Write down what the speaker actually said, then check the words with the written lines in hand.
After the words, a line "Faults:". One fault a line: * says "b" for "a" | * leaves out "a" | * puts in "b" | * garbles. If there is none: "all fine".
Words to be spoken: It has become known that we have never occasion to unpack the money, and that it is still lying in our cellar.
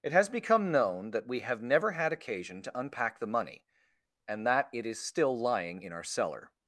It has become known that we have never had occasion to unpack the money, and that it is still lying in our cellar.
Faults:
* puts in "had"